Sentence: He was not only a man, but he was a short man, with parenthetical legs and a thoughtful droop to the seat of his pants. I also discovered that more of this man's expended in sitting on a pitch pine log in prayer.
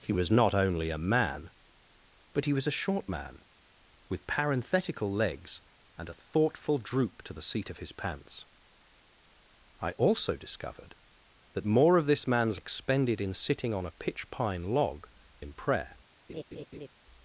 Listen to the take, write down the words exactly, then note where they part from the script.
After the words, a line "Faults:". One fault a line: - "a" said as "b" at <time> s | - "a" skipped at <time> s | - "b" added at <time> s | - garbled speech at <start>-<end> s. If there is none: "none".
He was not only a man, but he was a short man, with parenthetical legs and a thoughtful droop to the seat of his pants. I also discovered that more of this man's expended in sitting on a pitch pine log in prayer.
Faults:
none